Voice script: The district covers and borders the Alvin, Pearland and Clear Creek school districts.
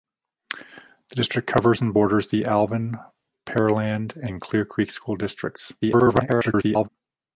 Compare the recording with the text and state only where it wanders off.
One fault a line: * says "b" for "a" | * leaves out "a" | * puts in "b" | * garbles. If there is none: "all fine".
* garbles